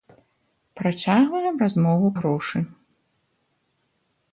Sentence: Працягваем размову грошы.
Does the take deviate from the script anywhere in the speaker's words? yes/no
no